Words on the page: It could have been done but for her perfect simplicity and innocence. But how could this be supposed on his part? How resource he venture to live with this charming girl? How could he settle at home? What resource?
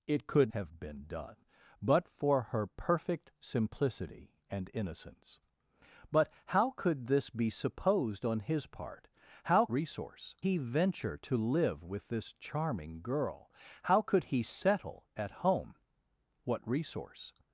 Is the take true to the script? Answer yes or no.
yes